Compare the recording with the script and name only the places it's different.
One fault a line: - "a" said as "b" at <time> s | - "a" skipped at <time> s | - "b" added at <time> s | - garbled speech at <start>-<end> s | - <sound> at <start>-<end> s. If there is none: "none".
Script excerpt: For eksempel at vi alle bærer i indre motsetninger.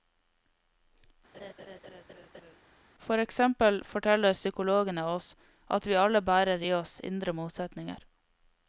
- laugh at 1.3-2.6 s
- "forteller psykologene oss" added at 3.9 s
- "oss" added at 6.8 s